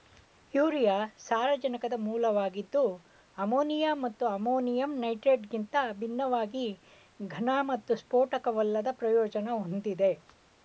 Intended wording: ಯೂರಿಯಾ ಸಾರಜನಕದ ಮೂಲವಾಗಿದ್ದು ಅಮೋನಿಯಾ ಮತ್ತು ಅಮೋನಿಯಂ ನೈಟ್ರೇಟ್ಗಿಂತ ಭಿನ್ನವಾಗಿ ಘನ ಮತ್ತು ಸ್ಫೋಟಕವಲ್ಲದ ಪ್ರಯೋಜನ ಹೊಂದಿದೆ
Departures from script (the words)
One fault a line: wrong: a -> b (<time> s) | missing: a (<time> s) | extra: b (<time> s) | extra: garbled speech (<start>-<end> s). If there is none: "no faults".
no faults